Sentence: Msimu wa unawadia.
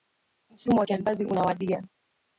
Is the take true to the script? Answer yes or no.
no